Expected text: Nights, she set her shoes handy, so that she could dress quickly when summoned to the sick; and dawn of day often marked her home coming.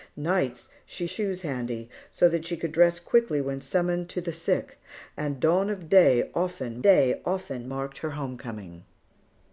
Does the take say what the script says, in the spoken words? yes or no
no